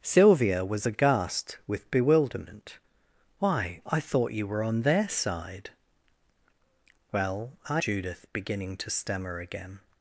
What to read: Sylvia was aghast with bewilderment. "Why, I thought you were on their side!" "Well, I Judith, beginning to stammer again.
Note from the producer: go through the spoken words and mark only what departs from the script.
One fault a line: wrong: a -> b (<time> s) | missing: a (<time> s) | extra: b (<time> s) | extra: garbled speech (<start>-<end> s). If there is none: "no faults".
no faults